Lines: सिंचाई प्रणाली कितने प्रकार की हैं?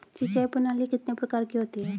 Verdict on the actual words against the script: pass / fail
fail